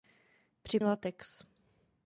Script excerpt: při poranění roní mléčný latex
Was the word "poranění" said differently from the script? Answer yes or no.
yes